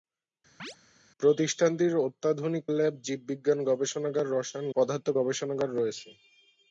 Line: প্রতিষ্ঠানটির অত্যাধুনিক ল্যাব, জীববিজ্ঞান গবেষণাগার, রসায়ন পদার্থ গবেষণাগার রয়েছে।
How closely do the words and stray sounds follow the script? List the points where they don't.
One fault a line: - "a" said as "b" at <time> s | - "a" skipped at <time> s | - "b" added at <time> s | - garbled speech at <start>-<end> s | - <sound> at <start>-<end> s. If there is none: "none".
- chirp at 0.6-0.8 s